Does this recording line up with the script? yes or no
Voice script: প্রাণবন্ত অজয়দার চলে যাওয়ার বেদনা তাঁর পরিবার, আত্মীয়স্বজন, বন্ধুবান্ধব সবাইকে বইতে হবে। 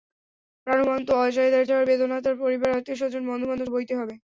no